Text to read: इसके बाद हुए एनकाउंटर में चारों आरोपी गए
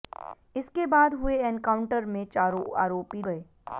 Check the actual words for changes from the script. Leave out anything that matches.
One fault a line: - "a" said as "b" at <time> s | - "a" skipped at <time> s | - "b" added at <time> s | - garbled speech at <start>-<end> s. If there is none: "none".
none